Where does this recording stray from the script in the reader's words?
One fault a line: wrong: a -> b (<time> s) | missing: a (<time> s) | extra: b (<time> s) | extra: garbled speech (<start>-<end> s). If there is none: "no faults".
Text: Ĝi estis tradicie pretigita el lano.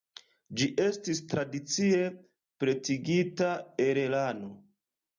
no faults